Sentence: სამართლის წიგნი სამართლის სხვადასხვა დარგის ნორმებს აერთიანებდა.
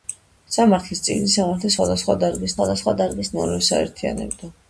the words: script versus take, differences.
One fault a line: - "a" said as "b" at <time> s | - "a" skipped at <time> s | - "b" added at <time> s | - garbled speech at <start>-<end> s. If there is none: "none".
- "სხვადასხვა დარგის" added at 2.6 s